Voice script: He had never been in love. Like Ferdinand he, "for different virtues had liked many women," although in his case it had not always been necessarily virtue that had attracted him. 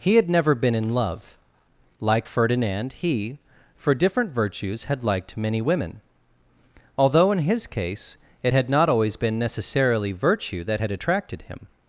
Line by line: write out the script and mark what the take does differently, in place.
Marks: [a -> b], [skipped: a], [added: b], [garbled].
He had never been in love. Like Ferdinand he, "for different virtues had liked many women," although in his case it had not always been necessarily virtue that had attracted him.